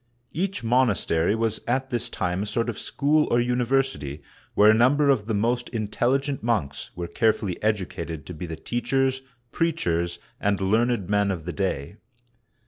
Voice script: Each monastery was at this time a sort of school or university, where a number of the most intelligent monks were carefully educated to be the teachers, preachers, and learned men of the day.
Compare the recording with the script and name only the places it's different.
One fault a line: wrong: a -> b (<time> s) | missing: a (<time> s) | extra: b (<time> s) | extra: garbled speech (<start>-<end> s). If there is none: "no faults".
no faults